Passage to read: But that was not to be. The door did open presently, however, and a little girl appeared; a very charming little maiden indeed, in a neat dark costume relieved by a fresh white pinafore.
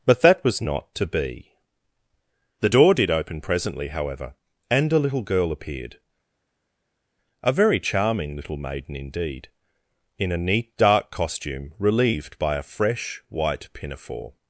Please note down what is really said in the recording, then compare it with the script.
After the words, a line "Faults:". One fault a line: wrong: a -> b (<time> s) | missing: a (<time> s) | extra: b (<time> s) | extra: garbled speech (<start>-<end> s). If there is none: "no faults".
But that was not to be. The door did open presently, however, and a little girl appeared; a very charming little maiden indeed, in a neat dark costume relieved by a fresh white pinafore.
Faults:
no faults